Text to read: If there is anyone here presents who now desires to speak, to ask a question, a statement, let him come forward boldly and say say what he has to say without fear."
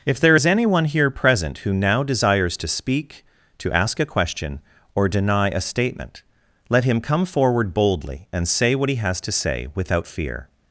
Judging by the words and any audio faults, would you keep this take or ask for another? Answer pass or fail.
fail